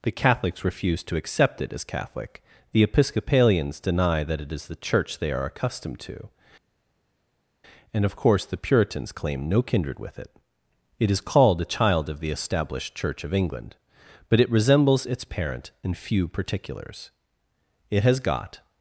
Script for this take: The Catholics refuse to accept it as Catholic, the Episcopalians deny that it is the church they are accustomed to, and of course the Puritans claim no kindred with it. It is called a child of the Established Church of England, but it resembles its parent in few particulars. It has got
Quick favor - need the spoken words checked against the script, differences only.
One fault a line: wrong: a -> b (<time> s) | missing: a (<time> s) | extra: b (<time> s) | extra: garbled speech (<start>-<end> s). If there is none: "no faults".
no faults